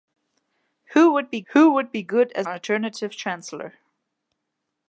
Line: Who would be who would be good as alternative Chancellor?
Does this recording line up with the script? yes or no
yes